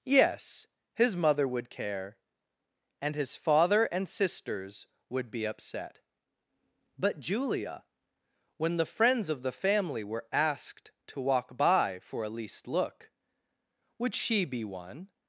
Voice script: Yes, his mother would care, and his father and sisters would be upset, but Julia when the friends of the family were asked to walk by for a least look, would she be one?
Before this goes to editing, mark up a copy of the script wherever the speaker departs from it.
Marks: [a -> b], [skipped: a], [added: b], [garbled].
Yes, his mother would care, and his father and sisters would be upset, but Julia when the friends of the family were asked to walk by for a least look, would she be one?